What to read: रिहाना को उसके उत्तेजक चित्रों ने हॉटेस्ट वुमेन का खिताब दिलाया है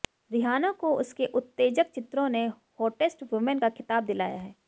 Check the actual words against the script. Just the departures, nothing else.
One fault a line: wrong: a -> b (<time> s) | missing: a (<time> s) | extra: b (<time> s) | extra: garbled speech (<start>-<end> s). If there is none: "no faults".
no faults